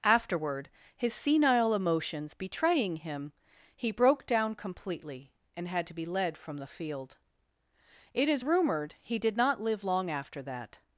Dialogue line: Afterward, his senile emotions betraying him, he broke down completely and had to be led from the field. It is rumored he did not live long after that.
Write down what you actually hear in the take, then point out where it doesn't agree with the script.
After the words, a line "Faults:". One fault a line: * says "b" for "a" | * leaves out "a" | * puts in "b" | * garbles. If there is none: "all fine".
Afterward, his senile emotions betraying him, he broke down completely and had to be led from the field. It is rumored he did not live long after that.
Faults:
all fine